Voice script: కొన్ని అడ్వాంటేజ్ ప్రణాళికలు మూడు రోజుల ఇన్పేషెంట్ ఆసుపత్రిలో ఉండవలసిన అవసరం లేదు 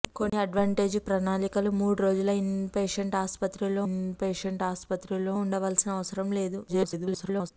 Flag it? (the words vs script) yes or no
yes